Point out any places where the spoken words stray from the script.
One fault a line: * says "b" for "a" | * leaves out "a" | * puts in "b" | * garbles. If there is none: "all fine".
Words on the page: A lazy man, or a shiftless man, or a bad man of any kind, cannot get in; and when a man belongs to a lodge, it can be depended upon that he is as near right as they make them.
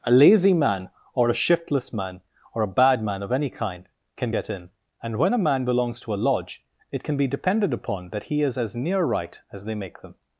* says "can" for "cannot"